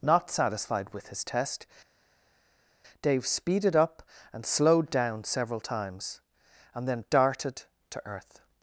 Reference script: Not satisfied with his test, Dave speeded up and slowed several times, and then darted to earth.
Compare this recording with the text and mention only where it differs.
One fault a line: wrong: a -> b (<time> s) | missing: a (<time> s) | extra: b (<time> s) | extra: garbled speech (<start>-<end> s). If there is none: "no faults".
extra: down (4.9 s)